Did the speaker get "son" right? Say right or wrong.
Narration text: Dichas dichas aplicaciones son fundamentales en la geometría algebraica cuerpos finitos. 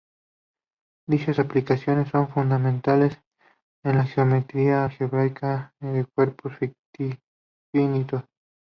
right